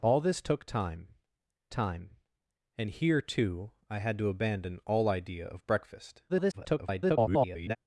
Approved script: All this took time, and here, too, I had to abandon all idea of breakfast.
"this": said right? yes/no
yes